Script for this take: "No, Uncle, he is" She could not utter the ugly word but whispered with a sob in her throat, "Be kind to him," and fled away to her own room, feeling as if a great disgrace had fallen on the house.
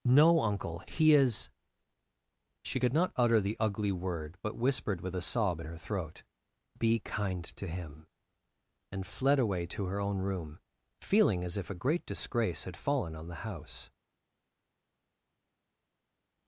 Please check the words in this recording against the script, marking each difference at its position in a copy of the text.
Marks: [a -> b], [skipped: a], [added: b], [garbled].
"No, Uncle, he is" She could not utter the ugly word but whispered with a sob in her throat, "Be kind to him," and fled away to her own room, feeling as if a great disgrace had fallen on the house.